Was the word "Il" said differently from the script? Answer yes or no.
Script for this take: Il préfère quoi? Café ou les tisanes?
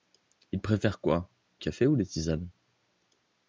no